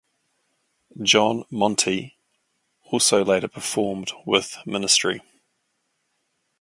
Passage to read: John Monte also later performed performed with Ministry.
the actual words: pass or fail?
fail